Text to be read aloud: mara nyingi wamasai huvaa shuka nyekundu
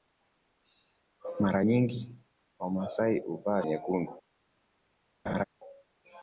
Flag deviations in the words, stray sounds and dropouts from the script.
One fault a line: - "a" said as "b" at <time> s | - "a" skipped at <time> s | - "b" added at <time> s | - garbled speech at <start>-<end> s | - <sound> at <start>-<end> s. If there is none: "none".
- "shuka" skipped at 3.6 s
- laugh at 5.3-5.4 s